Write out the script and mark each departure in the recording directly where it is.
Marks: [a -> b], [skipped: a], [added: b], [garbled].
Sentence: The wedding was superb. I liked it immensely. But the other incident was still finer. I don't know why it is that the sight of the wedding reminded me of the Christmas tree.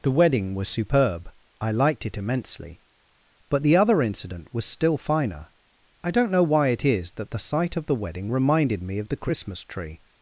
The wedding was superb. I liked it immensely. But the other incident was still finer. I don't know why it is that the sight of the wedding reminded me of the Christmas tree.